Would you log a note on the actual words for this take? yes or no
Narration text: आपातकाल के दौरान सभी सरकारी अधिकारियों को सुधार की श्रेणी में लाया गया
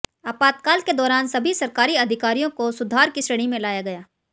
no